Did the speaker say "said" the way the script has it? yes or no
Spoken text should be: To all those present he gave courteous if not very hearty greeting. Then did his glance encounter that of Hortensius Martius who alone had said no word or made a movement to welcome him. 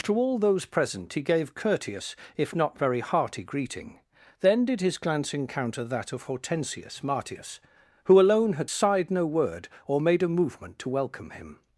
no